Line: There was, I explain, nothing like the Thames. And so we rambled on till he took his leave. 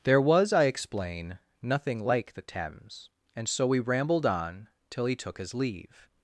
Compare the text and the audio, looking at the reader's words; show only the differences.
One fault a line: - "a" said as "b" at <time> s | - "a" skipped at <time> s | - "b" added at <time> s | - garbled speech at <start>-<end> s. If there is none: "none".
none